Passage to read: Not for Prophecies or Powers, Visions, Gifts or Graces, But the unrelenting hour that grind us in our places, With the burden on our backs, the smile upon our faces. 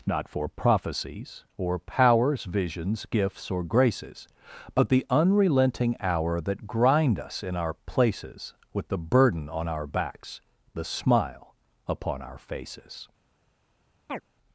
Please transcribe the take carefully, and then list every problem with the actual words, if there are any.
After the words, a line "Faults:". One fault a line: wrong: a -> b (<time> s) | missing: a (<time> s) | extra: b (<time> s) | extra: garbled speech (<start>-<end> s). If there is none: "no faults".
Not for Prophecies or Powers, Visions, Gifts or Graces, But the unrelenting hour that grind us in our places, With the burden on our backs, the smile upon our faces.
Faults:
no faults